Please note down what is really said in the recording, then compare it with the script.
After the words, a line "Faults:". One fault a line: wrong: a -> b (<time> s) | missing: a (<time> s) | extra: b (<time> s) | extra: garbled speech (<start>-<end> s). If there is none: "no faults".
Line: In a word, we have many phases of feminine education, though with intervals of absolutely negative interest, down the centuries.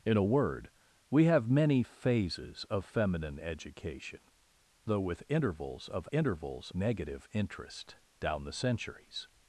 In a word, we have many phases of feminine education, though with intervals of intervals negative interest, down the centuries.
Faults:
wrong: absolutely -> intervals (6.1 s)